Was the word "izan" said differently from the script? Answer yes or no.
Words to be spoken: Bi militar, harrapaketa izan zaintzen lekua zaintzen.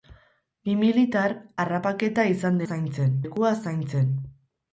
no